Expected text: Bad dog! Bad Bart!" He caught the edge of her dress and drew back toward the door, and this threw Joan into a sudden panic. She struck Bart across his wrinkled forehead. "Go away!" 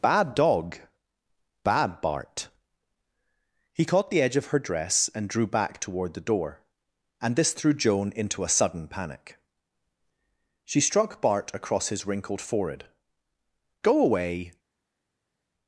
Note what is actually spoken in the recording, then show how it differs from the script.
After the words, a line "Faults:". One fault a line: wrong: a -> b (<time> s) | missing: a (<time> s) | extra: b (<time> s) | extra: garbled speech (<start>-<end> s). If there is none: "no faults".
Bad dog! Bad Bart!" He caught the edge of her dress and drew back toward the door, and this threw Joan into a sudden panic. She struck Bart across his wrinkled forehead. "Go away!"
Faults:
no faults